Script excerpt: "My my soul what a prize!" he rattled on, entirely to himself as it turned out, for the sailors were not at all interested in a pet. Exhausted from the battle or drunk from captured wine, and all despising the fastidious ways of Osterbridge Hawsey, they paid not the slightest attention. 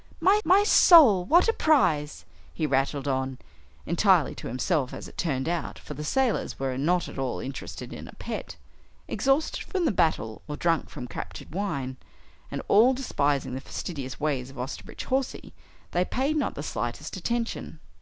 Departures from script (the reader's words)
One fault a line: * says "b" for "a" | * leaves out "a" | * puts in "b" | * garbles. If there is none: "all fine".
all fine